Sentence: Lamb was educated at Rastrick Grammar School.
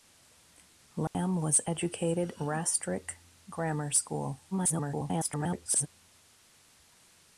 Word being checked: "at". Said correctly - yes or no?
no